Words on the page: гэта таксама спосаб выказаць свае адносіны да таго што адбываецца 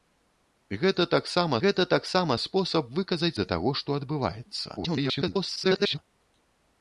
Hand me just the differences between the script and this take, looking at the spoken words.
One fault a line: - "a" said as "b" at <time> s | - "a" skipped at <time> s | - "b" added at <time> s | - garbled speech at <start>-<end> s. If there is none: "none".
- "гэта таксама" added at 1.6 s
- "свае адносіны" skipped at 3.3 s
- garbled speech at 4.8-6.0 s